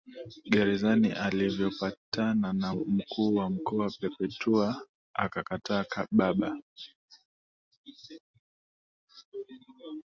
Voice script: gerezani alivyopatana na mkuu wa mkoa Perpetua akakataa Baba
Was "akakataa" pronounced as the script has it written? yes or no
yes